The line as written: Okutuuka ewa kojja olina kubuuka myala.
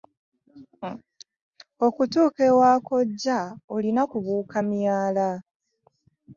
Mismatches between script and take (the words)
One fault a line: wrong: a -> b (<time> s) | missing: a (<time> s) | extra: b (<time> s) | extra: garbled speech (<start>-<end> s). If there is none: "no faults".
no faults